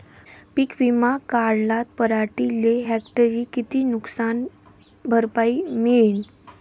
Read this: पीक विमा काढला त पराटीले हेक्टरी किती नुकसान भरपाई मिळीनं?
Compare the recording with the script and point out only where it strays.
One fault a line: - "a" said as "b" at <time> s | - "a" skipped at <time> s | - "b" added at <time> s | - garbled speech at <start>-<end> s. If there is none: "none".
- "त" skipped at 1.8 s